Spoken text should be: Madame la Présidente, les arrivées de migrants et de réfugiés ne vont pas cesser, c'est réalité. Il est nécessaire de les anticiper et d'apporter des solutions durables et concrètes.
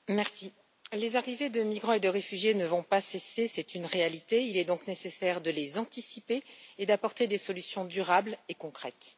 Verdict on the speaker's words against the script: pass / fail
fail